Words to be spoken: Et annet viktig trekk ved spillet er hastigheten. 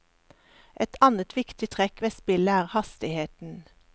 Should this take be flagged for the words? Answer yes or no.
no